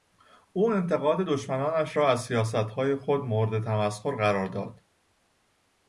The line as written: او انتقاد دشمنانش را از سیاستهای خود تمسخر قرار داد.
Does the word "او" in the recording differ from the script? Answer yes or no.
no